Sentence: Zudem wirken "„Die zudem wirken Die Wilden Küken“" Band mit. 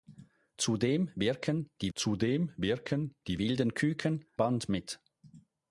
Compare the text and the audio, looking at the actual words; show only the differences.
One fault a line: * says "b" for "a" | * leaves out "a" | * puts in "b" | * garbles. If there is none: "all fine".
all fine